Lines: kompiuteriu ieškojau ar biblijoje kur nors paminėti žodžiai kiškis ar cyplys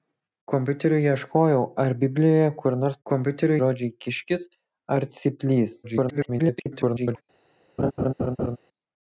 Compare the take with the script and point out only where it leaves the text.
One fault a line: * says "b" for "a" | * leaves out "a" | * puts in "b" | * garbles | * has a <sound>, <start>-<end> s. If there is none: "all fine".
* says "kompiuteriu" for "paminėti"
* garbles
* has a laugh, 7.8-8.6 s